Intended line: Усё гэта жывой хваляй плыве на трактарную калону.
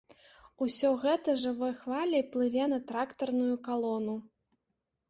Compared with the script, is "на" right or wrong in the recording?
right